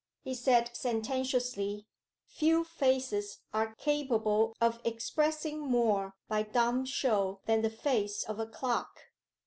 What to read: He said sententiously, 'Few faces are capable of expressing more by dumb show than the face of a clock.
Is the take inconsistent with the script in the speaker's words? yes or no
no